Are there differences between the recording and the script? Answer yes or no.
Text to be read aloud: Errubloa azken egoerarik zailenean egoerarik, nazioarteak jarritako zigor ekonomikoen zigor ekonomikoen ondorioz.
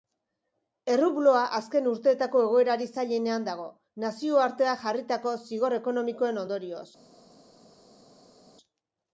yes